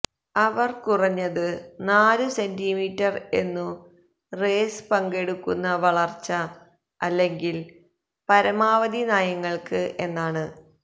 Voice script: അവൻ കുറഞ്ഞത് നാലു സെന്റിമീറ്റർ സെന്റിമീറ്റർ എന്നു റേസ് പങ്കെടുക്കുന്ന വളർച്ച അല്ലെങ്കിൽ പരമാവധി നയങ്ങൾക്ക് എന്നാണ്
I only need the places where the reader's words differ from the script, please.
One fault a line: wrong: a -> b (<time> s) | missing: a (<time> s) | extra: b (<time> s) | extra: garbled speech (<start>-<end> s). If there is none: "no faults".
wrong: അവൻ -> അവർ (0.3 s)
missing: സെന്റിമീറ്റർ (3.1 s)